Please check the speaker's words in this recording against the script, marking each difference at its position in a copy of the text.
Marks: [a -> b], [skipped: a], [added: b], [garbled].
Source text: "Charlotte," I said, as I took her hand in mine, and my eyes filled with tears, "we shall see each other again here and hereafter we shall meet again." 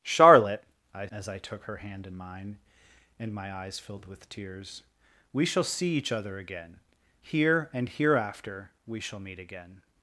"Charlotte," I [skipped: said,] as I took her hand in mine, and my eyes filled with tears, "we shall see each other again here and hereafter we shall meet again."